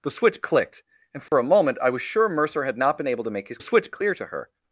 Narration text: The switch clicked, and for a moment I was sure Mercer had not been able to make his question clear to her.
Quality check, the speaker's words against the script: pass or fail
fail